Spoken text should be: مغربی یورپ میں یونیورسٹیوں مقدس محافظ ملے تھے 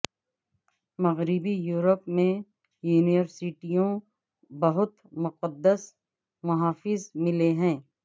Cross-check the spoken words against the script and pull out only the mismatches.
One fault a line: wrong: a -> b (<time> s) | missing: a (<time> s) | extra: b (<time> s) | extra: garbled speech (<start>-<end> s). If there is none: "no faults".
extra: بہت (4.5 s)
wrong: تھے -> ہیں (7.5 s)